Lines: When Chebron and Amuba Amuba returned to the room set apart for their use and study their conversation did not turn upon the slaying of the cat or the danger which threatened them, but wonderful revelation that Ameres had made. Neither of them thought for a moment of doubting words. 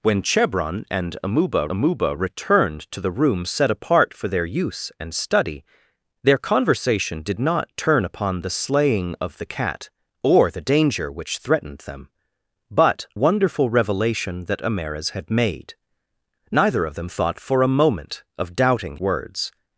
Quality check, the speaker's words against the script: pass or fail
pass